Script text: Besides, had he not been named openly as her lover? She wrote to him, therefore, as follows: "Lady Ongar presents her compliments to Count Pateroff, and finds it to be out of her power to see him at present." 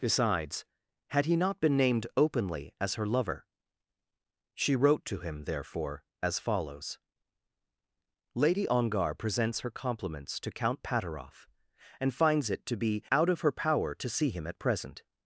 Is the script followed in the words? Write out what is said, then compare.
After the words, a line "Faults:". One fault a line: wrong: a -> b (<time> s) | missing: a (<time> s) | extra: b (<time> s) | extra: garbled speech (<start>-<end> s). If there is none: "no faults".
Besides, had he not been named openly as her lover? She wrote to him, therefore, as follows: "Lady Ongar presents her compliments to Count Pateroff, and finds it to be out of her power to see him at present."
Faults:
no faults